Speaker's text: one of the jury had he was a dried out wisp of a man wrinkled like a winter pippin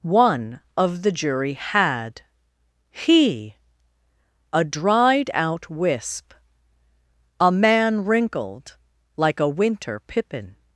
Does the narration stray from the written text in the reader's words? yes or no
yes